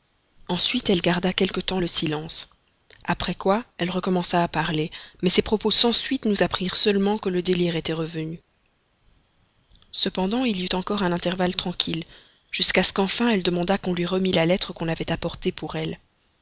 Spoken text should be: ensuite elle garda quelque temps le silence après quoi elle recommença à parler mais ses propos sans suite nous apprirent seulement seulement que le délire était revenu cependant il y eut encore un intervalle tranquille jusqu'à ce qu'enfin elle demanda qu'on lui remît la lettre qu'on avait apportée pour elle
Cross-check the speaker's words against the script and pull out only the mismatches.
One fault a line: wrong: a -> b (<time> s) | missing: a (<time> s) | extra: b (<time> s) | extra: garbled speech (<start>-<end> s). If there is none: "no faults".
missing: seulement (7.2 s)